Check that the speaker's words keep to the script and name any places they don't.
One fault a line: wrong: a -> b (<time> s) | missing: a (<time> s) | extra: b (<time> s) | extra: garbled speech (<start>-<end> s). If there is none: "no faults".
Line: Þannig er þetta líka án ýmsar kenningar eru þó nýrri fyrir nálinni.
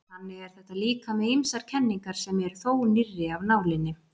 wrong: án -> með (1.2 s)
extra: sem (2.2 s)
wrong: fyrir -> af (3.4 s)